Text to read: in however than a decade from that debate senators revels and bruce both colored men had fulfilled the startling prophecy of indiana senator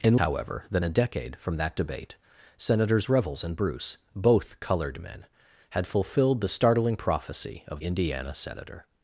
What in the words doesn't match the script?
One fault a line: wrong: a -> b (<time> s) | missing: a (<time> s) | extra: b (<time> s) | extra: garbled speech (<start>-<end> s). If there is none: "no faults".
no faults